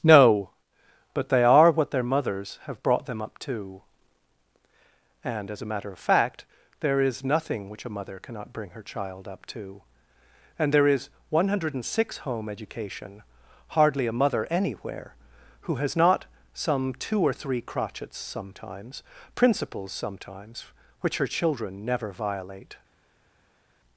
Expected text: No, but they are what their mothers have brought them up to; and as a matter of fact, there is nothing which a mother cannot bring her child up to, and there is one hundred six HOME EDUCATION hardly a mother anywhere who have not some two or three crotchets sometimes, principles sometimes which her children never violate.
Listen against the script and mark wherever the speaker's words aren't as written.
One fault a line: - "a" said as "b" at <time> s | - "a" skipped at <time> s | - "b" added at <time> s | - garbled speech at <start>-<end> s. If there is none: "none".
- "have" said as "has" at 15.8 s